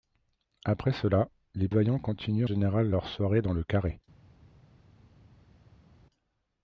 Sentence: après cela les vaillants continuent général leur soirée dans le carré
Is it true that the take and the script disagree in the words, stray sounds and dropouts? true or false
false